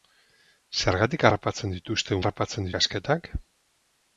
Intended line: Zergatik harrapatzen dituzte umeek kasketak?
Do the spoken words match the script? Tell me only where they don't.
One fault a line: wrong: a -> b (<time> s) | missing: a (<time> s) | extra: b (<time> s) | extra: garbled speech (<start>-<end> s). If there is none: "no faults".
wrong: umeek -> harrapatzen (2.2 s)